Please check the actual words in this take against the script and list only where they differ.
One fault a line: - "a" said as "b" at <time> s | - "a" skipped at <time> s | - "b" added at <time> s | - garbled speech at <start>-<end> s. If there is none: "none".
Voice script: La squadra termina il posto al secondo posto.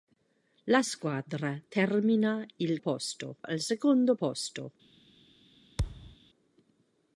none